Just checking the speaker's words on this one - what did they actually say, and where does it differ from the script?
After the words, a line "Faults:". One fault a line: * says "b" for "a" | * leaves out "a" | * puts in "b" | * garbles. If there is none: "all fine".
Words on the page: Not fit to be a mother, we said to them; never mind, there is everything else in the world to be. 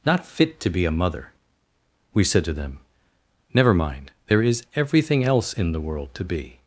Not fit to be a mother, we said to them; never mind, there is everything else in the world to be.
Faults:
all fine